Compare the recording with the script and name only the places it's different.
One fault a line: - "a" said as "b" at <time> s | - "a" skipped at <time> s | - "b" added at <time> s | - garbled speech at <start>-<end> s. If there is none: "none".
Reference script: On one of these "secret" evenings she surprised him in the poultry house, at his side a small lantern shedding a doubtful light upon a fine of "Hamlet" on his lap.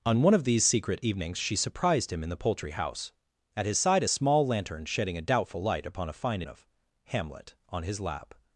none